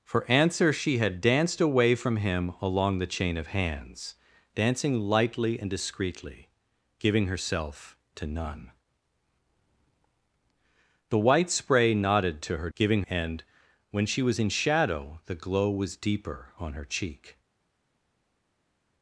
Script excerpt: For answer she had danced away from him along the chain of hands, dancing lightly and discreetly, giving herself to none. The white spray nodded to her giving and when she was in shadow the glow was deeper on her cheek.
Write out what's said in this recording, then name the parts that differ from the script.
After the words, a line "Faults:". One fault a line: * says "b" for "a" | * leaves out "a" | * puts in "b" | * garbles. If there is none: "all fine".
For answer she had danced away from him along the chain of hands, dancing lightly and discreetly, giving herself to none. The white spray nodded to her giving and when she was in shadow the glow was deeper on her cheek.
Faults:
all fine